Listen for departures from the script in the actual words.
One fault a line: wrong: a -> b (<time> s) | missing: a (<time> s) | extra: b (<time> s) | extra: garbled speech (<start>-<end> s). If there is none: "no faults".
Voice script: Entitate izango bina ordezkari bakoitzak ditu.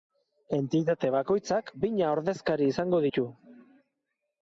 wrong: izango -> bakoitzak (1.2 s)
wrong: bakoitzak -> izango (2.8 s)